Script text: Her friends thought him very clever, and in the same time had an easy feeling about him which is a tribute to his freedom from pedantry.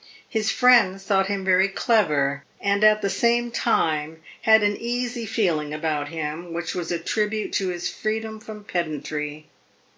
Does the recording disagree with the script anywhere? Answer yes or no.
yes